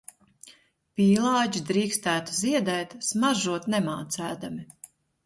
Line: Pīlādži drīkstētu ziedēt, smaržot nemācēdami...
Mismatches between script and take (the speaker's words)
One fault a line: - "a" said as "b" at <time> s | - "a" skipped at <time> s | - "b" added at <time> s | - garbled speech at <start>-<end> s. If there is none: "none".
none